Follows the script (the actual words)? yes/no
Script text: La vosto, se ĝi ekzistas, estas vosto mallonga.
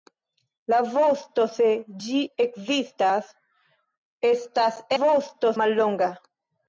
yes